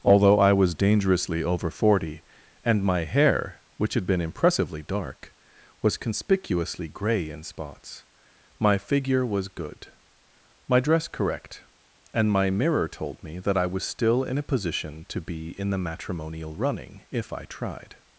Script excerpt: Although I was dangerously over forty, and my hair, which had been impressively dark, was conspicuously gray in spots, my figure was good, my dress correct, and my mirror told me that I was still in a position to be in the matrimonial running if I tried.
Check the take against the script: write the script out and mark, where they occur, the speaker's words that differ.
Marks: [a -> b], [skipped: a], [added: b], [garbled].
Although I was dangerously over forty, and my hair, which had been impressively dark, was conspicuously gray in spots, my figure was good, my dress correct, and my mirror told me that I was still in a position to be in the matrimonial running if I tried.